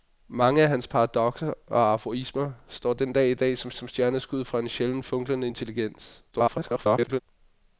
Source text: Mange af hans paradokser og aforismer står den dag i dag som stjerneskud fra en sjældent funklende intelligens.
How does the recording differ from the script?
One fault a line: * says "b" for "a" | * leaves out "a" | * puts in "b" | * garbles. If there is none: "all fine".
* puts in "som"
* garbles